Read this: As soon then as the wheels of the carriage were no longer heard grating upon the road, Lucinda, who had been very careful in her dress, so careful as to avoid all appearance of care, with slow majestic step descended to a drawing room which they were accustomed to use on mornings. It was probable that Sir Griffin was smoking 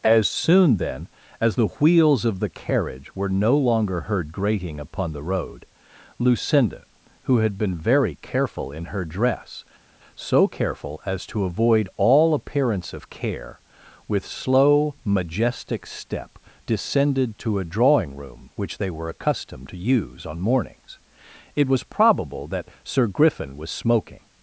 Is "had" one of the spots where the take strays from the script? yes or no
no